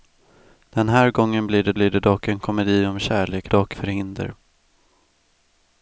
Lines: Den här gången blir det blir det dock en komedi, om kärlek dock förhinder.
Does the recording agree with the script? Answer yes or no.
yes